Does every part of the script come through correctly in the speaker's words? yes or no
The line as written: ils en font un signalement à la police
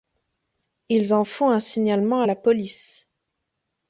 yes